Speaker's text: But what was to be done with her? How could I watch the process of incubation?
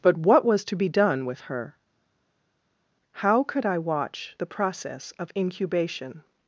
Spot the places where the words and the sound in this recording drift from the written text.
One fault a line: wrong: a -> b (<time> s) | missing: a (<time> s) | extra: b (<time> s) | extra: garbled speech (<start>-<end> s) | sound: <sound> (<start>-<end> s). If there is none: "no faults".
no faults